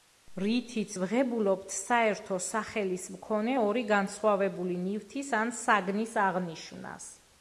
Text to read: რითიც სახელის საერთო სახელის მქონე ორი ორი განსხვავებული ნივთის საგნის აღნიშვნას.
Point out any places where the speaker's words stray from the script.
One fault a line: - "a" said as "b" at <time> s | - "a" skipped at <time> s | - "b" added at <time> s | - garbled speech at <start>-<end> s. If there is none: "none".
- "სახელის" said as "ვღებულობთ" at 1.0 s
- "ორი" skipped at 3.8 s
- "ან" added at 5.4 s